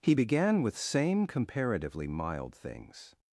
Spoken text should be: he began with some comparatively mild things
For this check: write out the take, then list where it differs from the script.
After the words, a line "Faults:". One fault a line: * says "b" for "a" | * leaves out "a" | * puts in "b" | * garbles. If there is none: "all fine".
he began with same comparatively mild things
Faults:
* says "same" for "some"